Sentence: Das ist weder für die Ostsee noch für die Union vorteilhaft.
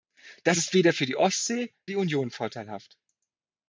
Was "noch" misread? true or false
true